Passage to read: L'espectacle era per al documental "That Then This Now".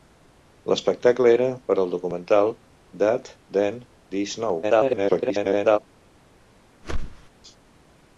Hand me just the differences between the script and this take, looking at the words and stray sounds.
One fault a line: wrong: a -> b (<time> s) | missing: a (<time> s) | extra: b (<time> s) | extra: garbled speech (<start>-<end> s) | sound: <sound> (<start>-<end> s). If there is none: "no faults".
extra: garbled speech (4.6-5.8 s)
sound: whoosh (6.8-7.3 s)